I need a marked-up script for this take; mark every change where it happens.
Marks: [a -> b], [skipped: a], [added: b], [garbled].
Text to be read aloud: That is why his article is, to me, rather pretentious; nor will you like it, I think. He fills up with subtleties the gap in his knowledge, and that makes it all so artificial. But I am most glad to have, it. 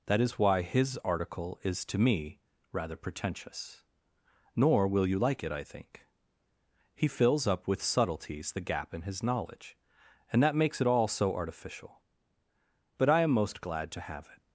That is why his article is, to me, rather pretentious; nor will you like it, I think. He fills up with subtleties the gap in his knowledge, and that makes it all so artificial. But I am most glad to have, it.